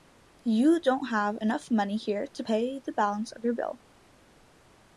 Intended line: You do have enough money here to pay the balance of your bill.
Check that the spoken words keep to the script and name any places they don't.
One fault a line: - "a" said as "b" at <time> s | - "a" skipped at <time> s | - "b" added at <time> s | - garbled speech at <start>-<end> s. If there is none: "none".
- "do" said as "don't" at 0.8 s